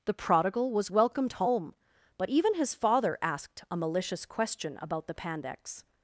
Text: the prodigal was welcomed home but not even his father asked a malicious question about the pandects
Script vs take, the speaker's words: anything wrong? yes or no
yes